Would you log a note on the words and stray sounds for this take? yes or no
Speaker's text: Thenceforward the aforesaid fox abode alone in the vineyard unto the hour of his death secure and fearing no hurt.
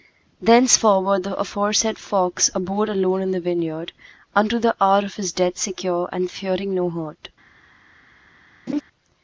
yes